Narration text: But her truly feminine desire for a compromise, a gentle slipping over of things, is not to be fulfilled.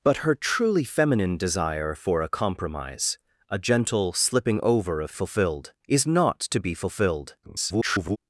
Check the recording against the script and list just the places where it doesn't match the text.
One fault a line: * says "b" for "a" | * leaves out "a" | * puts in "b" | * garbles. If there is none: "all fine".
* says "fulfilled" for "things"
* garbles